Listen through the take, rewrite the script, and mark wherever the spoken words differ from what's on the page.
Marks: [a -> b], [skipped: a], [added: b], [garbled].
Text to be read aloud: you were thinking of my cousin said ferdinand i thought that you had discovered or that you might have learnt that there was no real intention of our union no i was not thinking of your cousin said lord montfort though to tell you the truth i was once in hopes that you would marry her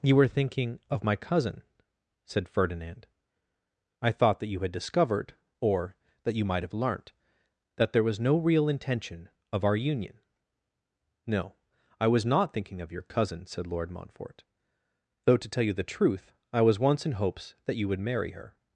you were thinking of my cousin said ferdinand i thought that you had discovered or that you might have learnt that there was no real intention of our union no i was not thinking of your cousin said lord montfort though to tell you the truth i was once in hopes that you would marry her